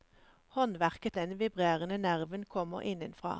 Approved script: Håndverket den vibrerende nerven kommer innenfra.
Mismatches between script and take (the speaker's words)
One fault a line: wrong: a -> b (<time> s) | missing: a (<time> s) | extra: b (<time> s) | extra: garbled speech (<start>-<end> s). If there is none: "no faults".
no faults